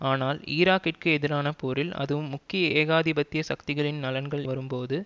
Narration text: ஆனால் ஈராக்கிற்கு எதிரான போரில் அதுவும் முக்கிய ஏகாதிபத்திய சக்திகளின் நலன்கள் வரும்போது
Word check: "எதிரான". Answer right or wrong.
right